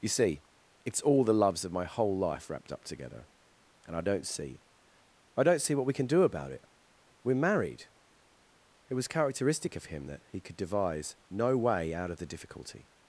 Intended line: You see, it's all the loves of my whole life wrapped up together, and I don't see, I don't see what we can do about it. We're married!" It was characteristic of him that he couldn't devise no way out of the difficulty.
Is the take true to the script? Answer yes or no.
no